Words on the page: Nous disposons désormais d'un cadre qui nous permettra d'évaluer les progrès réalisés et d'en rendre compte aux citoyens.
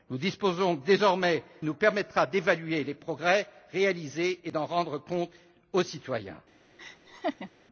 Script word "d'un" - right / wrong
wrong